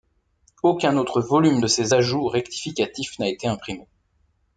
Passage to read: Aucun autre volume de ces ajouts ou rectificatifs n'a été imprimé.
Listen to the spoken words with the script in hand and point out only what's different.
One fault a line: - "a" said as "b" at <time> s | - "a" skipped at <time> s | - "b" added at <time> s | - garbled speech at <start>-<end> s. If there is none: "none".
none